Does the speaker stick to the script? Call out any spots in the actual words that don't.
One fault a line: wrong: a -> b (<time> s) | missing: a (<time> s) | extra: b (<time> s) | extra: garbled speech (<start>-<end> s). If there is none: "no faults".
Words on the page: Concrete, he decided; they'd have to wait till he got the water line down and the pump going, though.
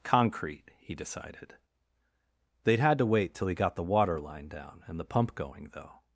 wrong: have -> had (2.8 s)